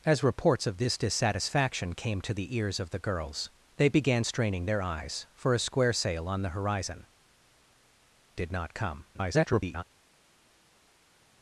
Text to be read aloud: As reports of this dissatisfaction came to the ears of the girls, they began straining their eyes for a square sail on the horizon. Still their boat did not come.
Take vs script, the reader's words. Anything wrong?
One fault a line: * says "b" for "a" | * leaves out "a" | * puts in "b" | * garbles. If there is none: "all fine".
* leaves out "Still their boat"
* garbles